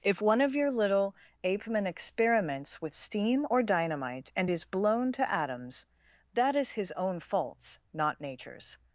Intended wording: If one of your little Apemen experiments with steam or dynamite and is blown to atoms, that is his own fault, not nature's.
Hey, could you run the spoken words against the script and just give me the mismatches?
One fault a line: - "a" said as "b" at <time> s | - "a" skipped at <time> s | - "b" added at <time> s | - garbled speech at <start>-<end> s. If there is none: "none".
- "fault" said as "faults" at 7.2 s